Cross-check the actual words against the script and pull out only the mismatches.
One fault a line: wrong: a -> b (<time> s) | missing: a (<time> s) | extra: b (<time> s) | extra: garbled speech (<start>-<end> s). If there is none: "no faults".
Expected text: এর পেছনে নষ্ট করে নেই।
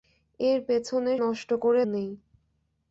no faults